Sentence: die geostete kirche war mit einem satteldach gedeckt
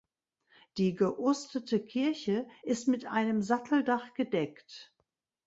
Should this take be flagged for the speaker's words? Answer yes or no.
yes